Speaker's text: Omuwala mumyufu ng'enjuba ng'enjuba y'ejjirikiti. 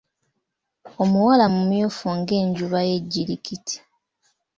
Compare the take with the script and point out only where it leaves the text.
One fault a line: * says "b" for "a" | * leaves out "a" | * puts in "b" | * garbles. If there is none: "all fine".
* leaves out "ng'enjuba"